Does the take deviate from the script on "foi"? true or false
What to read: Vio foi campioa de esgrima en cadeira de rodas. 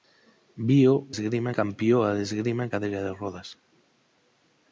true